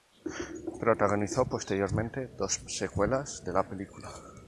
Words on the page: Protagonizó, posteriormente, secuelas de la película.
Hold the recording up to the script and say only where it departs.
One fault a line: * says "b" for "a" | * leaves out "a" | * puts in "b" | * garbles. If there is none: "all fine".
* puts in "dos"